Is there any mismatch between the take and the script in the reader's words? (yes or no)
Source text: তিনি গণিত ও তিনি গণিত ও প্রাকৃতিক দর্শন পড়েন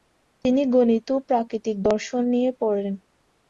yes